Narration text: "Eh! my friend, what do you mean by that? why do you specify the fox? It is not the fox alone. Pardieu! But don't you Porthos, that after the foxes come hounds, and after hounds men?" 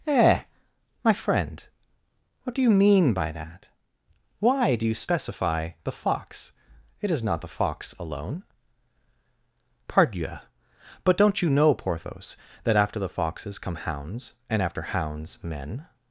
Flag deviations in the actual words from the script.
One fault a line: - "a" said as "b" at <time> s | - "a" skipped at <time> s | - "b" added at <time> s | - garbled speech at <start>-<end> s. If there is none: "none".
- "know" added at 11.5 s